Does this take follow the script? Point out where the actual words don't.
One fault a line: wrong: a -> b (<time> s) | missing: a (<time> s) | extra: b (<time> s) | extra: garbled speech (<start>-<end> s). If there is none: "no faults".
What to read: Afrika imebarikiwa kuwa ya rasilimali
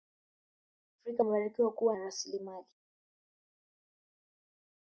no faults